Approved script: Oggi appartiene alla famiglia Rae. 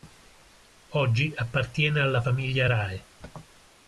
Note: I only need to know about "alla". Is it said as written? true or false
true